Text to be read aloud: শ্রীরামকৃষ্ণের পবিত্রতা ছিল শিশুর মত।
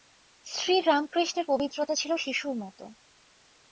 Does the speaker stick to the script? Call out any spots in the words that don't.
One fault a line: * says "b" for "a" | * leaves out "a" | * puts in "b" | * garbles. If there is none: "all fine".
all fine